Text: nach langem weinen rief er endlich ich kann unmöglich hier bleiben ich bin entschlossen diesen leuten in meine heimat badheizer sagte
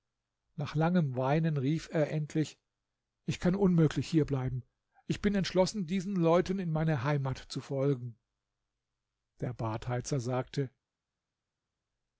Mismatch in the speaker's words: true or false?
true